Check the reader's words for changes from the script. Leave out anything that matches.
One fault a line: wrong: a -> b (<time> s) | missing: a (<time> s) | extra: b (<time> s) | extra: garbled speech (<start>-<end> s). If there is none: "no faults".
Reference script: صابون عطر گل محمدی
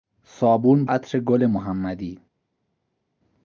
no faults